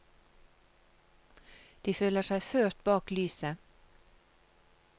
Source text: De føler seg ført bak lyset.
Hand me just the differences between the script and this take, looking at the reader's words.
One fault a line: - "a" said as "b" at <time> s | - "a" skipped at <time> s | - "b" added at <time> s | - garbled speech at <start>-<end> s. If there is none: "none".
none